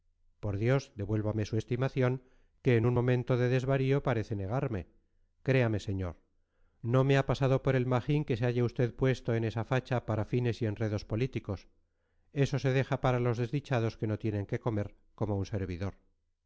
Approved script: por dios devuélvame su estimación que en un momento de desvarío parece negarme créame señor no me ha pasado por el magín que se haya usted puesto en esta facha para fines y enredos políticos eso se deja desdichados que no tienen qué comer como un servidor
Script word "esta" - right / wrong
wrong